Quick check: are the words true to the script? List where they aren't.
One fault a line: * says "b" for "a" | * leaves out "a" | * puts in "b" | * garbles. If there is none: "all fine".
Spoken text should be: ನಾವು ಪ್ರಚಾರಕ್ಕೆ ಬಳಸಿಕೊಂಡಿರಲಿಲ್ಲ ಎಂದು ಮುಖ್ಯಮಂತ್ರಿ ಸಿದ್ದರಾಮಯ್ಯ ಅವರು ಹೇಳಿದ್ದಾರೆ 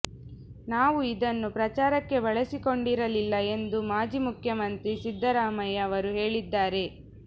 * puts in "ಇದನ್ನು"
* puts in "ಮಾಜಿ"